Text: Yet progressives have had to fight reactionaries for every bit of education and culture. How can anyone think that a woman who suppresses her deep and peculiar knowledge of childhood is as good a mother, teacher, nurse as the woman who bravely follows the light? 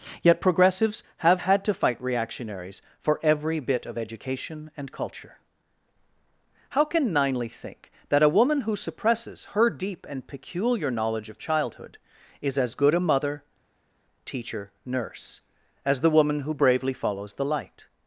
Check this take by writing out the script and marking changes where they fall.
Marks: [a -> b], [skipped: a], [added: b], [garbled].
Yet progressives have had to fight reactionaries for every bit of education and culture. How can [anyone -> ninely] think that a woman who suppresses her deep and peculiar knowledge of childhood is as good a mother, teacher, nurse as the woman who bravely follows the light?